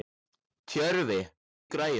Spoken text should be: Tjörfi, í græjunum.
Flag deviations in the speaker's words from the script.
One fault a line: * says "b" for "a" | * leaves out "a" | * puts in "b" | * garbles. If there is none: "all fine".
all fine